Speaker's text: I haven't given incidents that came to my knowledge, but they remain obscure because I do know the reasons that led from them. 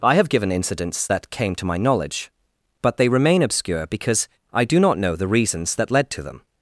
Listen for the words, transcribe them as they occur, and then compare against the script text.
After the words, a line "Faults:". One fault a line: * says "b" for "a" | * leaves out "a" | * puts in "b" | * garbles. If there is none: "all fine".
I have given incidents that came to my knowledge, but they remain obscure because I do not know the reasons that led to them.
Faults:
* says "have" for "haven't"
* puts in "not"
* says "to" for "from"